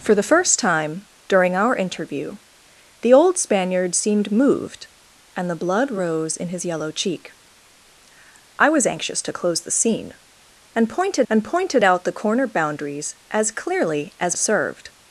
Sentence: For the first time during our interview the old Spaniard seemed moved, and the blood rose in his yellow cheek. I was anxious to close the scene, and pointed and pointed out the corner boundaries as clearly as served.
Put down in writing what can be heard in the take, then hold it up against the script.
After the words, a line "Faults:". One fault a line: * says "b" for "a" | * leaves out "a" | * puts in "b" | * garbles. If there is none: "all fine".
For the first time during our interview the old Spaniard seemed moved, and the blood rose in his yellow cheek. I was anxious to close the scene, and pointed and pointed out the corner boundaries as clearly as served.
Faults:
all fine